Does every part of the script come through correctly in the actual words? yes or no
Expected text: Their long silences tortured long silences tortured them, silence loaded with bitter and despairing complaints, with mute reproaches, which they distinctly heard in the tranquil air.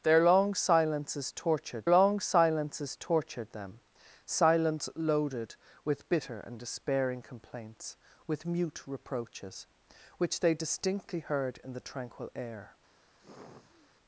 yes